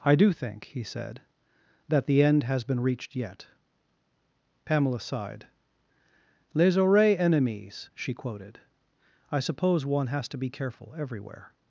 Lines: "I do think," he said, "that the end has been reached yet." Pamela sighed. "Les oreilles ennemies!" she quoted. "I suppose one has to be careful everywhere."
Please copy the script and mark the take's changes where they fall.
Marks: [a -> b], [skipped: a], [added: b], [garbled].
"I do think," he said, "that the end has been reached yet." Pamela sighed. "Les oreilles ennemies!" she quoted. "I suppose one has to be careful everywhere."